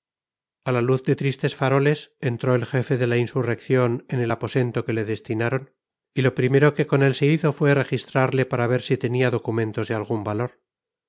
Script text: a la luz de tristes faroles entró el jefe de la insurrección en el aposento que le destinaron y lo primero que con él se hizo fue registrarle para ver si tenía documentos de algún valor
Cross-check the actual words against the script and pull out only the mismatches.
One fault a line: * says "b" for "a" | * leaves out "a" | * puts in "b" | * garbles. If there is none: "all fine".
all fine